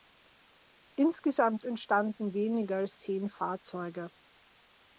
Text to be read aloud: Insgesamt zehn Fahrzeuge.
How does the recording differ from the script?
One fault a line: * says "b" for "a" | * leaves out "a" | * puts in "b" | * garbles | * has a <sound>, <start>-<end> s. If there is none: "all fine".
* puts in "entstanden weniger als"